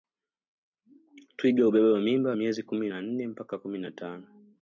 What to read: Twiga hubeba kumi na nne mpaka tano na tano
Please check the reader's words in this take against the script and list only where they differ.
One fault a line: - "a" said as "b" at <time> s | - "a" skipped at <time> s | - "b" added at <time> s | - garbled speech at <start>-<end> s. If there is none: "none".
- "mimba miezi" added at 2.0 s
- "tano" said as "kumi" at 3.6 s